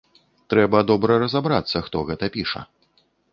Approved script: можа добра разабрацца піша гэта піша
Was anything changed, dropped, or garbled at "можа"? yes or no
yes